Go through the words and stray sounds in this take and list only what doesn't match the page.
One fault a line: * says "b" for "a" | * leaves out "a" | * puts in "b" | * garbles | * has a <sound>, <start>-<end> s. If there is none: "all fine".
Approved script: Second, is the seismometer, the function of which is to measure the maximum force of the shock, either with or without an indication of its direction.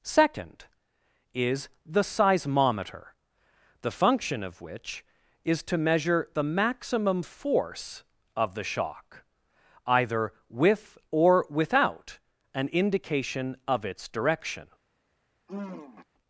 * has a sigh, 15.5-16.1 s